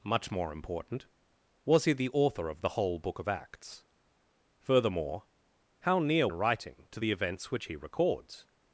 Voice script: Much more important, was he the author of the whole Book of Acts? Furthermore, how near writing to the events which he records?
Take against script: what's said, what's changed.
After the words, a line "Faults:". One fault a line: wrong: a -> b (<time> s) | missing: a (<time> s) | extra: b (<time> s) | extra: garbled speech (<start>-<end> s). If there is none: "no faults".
Much more important, was he the author of the whole Book of Acts? Furthermore, how near writing to the events which he records?
Faults:
no faults